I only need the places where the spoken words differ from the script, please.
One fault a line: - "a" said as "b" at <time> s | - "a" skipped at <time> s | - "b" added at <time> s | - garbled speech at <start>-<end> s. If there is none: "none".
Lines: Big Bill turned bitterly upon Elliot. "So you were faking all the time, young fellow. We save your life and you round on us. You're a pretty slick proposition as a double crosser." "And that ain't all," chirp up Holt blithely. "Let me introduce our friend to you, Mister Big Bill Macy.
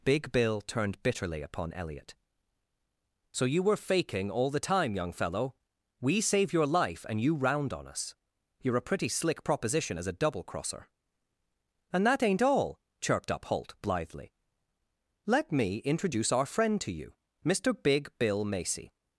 - "chirp" said as "chirped" at 13.0 s